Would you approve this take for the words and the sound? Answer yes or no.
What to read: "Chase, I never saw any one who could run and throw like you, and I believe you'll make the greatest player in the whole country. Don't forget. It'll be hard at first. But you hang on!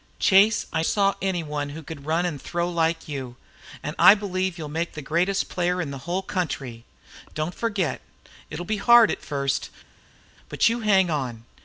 no